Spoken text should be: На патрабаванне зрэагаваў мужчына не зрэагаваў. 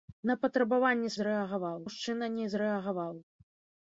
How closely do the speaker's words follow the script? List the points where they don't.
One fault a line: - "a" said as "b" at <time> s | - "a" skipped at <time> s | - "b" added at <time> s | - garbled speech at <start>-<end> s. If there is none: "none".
none